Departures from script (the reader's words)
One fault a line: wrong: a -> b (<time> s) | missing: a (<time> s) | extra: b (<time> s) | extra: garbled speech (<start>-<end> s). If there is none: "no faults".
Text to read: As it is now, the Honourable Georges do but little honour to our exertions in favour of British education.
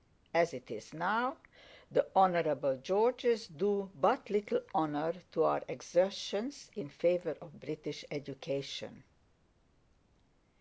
no faults